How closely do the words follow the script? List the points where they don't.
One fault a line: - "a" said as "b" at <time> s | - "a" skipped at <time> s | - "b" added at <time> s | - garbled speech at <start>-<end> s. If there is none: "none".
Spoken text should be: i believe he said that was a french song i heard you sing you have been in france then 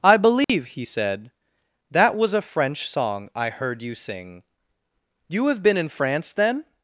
none